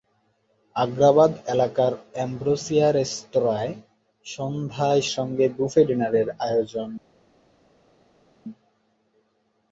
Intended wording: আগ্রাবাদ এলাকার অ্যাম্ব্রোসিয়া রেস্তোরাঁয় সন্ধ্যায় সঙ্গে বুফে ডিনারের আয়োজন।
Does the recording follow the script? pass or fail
pass